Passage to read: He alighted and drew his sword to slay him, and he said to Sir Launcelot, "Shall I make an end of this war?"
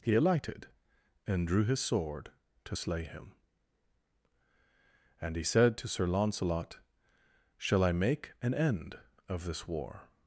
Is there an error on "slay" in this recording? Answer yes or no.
no